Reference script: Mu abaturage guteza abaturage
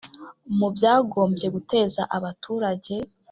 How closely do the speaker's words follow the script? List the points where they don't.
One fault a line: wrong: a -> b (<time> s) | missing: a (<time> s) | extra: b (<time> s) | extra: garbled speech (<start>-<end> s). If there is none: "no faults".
wrong: abaturage -> byagombye (0.7 s)